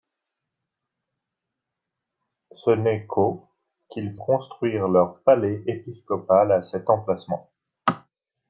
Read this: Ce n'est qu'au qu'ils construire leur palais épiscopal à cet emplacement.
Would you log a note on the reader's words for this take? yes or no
no